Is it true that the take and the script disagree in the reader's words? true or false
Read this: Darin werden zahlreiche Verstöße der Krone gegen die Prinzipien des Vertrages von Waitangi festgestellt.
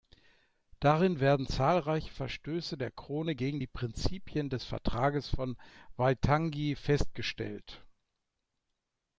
false